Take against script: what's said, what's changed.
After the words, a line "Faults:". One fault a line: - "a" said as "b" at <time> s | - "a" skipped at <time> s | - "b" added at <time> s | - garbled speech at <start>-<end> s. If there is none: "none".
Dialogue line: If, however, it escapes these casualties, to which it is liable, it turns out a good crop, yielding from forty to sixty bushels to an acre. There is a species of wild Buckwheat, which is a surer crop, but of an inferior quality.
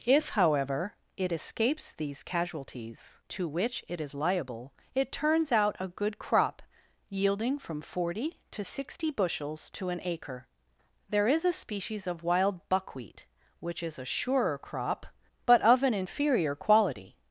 If, however, it escapes these casualties, to which it is liable, it turns out a good crop, yielding from forty to sixty bushels to an acre. There is a species of wild Buckwheat, which is a surer crop, but of an inferior quality.
Faults:
none